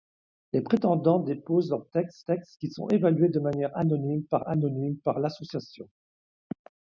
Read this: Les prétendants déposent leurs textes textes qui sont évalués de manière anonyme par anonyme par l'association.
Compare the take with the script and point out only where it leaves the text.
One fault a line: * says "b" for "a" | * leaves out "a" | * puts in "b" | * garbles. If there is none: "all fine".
all fine